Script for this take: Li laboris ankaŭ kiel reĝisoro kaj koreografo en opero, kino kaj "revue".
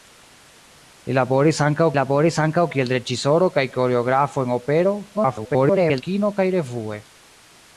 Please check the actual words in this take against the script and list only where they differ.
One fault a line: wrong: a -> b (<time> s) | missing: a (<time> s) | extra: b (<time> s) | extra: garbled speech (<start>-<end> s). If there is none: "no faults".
extra: laboris ankaŭ (2.0 s)
extra: garbled speech (5.1-6.0 s)